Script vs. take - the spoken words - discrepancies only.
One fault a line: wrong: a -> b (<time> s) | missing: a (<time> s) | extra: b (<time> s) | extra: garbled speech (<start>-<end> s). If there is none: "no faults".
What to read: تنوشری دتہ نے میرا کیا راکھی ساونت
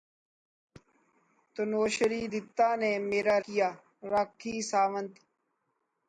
no faults